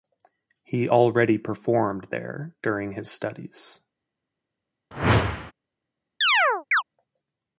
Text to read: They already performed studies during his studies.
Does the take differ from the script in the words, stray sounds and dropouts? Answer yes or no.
yes